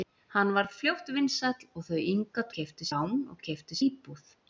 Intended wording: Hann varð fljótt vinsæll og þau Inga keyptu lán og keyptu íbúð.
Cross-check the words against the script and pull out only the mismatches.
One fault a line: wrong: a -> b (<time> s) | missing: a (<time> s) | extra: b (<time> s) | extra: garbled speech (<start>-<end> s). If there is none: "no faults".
no faults